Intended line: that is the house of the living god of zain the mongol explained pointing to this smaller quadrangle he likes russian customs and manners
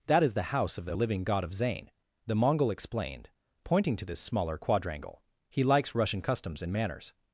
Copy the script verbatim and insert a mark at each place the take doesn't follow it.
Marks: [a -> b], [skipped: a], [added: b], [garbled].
that is the house of the living god of zain the mongol explained pointing to this smaller quadrangle he likes russian customs and manners